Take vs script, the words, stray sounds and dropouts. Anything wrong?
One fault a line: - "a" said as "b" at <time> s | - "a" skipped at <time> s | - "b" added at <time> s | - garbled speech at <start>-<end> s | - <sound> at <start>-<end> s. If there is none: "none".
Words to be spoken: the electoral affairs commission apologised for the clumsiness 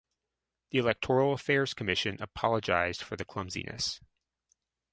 none